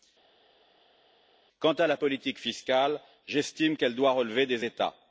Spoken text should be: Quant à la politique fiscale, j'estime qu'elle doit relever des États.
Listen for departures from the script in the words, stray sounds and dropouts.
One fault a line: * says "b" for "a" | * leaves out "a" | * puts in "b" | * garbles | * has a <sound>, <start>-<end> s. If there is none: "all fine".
all fine